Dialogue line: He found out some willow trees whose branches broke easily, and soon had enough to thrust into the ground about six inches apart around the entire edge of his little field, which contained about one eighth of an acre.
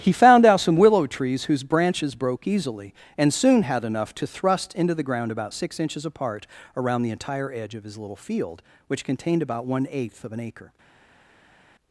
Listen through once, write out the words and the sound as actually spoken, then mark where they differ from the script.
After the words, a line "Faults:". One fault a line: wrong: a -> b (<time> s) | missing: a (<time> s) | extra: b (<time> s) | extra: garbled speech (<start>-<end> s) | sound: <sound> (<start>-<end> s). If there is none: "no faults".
He found out some willow trees whose branches broke easily, and soon had enough to thrust into the ground about six inches apart around the entire edge of his little field, which contained about one eighth of an acre.
Faults:
no faults